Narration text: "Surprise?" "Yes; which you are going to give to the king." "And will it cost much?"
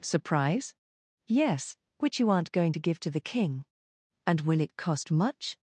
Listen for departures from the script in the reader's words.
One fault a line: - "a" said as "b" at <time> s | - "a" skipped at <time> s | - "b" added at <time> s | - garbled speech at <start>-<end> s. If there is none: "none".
- "are" said as "aren't" at 2.3 s